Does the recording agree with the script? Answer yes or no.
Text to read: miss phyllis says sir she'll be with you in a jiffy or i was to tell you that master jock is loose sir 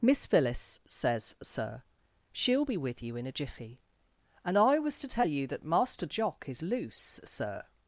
no